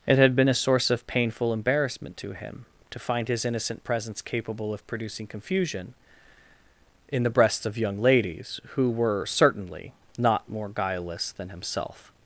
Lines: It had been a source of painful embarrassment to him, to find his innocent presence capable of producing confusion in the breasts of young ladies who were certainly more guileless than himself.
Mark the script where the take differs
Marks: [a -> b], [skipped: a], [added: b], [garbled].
It had been a source of painful embarrassment to him, to find his innocent presence capable of producing confusion in the breasts of young ladies who were certainly [added: not] more guileless than himself.